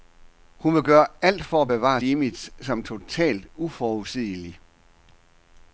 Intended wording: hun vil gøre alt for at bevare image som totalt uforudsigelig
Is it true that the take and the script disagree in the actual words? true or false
false